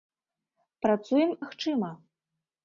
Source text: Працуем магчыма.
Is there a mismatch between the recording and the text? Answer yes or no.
no